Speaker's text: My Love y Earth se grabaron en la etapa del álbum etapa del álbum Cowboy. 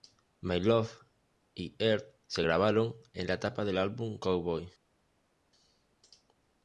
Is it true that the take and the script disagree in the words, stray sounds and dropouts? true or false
true